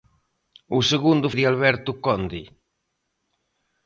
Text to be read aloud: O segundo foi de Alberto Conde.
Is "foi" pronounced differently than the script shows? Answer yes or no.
yes